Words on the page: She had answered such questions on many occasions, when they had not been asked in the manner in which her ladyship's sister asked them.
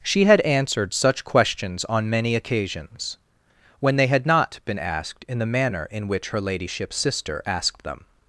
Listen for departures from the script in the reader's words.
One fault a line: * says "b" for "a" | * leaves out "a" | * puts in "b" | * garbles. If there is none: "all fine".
all fine